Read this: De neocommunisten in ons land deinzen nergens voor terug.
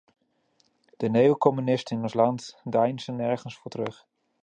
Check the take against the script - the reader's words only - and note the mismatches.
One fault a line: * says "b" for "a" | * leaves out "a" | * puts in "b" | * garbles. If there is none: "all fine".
all fine